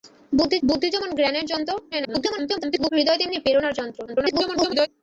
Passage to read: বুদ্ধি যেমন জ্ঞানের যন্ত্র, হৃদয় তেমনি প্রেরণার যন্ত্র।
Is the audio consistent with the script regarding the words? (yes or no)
no